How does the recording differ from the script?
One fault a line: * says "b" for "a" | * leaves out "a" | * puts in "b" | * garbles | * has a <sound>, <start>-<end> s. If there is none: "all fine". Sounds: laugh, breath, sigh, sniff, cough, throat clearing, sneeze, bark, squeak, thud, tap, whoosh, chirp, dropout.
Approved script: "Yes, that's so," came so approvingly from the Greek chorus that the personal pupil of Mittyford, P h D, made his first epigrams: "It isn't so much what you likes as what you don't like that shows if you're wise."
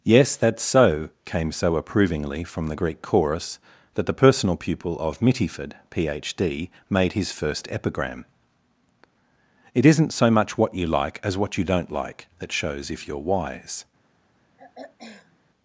* says "epigram" for "epigrams"
* says "like" for "likes"
* has a throat clearing, 14.6-15.4 s